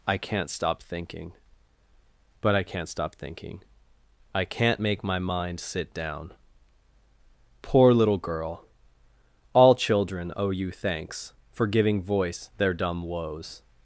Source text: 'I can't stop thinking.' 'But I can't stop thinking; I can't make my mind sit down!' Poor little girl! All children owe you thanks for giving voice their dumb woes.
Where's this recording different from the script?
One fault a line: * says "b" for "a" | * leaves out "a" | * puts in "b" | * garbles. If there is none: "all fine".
all fine